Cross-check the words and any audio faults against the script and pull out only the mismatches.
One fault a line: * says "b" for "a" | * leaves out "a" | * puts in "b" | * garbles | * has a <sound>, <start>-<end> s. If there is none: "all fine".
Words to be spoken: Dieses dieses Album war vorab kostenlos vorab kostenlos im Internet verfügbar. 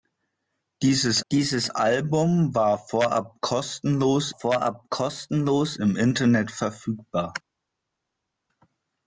all fine